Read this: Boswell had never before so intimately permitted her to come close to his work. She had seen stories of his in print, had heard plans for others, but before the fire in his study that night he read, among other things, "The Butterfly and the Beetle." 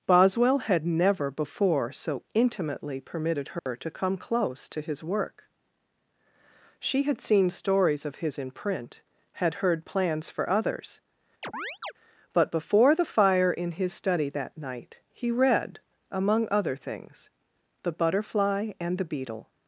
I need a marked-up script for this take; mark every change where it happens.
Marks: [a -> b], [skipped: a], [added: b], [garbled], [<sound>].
Boswell had never before so intimately permitted her [dropout] to come close to his work. She had seen stories of his in print, had heard plans for others, [chirp] but before the fire in his study that night he read, among other things, "The Butterfly and the Beetle."